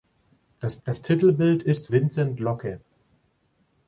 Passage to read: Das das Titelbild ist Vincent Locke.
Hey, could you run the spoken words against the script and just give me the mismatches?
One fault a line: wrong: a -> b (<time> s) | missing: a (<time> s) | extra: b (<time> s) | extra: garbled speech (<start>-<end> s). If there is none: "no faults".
no faults